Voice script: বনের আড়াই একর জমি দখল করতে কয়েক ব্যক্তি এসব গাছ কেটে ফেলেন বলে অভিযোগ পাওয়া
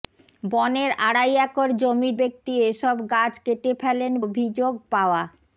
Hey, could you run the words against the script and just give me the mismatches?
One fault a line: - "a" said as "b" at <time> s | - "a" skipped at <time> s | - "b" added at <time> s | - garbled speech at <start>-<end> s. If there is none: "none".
- "দখল করতে কয়েক" skipped at 2.1 s
- "বলে" skipped at 4.1 s